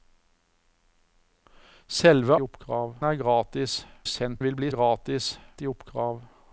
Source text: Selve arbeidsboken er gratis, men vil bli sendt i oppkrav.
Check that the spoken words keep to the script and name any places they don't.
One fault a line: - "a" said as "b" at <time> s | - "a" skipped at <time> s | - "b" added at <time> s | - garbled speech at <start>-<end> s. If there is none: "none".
- "arbeidsboken" said as "oppkrav" at 2.4 s
- "men" said as "sendt" at 4.0 s
- "sendt" said as "gratis" at 4.7 s